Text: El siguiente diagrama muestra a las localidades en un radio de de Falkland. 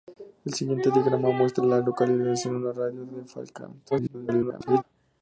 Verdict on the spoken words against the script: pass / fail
fail